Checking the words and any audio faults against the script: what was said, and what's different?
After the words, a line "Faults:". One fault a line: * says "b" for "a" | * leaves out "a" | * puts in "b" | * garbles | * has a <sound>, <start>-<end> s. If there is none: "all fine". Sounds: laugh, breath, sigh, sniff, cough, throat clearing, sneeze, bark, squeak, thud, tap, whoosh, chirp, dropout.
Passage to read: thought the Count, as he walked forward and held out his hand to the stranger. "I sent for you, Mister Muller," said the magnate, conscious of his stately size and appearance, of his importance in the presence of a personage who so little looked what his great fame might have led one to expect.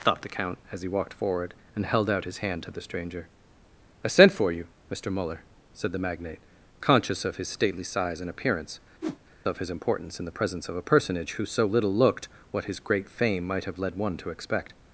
thought the Count, as he walked forward and held out his hand to the stranger. "I sent for you, Mister Muller," said the magnate, conscious of his stately size and appearance, of his importance in the presence of a personage who so little looked what his great fame might have led one to expect.
Faults:
* has a whoosh, 9.0-9.2 s